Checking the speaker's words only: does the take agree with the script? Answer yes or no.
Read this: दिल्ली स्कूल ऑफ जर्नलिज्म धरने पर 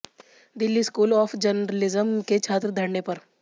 no